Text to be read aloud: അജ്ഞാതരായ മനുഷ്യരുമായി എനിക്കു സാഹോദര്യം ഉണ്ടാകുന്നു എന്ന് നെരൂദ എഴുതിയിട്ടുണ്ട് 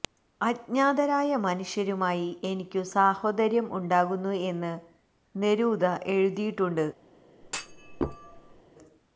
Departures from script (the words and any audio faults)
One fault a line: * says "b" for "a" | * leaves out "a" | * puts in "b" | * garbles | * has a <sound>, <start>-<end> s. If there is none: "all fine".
* has a thud, 7.4-8.6 s